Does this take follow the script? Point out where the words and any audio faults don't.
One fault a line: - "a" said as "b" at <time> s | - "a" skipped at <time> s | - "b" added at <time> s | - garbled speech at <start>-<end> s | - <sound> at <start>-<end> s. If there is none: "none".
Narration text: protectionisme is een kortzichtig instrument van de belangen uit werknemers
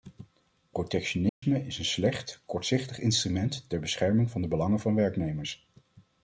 - dropout at 1.3-1.4 s
- "slecht" added at 1.9 s
- "ter bescherming" added at 3.7 s
- "uit" said as "van" at 4.8 s